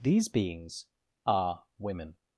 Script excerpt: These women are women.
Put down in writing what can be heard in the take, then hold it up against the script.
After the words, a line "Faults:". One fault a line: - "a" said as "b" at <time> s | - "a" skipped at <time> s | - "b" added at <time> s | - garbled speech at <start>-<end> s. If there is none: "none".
These beings are women.
Faults:
- "women" said as "beings" at 0.3 s